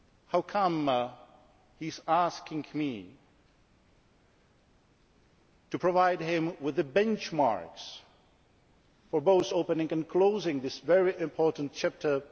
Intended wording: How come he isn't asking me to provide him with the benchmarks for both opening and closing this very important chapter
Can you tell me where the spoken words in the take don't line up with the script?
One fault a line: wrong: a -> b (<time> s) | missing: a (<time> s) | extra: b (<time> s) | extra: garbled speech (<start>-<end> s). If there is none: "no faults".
wrong: isn't -> is (1.9 s)